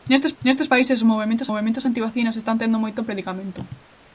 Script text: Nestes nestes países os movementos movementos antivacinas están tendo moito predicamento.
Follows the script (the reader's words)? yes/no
yes